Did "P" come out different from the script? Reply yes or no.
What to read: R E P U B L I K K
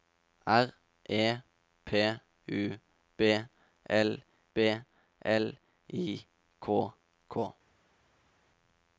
no